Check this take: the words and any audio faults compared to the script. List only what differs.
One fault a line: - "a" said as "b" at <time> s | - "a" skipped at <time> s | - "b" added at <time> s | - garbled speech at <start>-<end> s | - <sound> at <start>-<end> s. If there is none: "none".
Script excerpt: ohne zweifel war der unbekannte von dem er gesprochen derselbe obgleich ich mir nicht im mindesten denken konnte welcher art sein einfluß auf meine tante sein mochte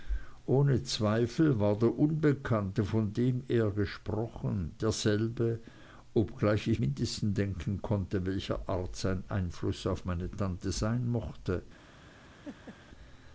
- "mir nicht im" skipped at 6.8 s
- laugh at 12.4-12.8 s